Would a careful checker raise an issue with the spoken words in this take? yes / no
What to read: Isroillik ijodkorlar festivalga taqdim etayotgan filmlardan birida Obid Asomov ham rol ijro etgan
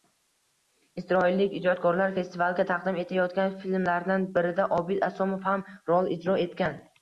no